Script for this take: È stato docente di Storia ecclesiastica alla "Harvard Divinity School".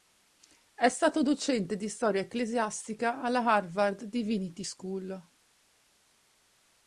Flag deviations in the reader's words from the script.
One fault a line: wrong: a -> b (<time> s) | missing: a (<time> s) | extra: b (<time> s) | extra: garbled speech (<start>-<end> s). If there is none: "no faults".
no faults